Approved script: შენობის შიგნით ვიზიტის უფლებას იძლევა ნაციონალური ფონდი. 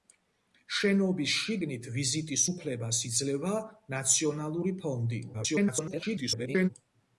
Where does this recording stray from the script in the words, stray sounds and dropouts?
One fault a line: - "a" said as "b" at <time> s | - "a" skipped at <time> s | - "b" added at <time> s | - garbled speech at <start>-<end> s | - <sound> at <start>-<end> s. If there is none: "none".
- garbled speech at 5.3-6.7 s